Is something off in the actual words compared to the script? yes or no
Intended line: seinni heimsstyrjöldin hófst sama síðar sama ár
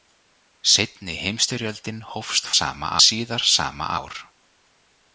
no